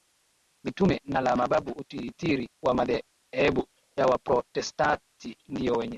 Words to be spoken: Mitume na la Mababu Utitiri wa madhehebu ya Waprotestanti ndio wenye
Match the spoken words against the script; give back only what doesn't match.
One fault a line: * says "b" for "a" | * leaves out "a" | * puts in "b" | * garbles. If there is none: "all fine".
all fine